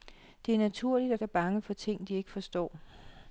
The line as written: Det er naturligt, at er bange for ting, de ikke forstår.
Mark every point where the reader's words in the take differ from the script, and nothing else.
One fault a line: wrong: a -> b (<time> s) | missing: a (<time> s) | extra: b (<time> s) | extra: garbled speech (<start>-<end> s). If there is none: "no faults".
no faults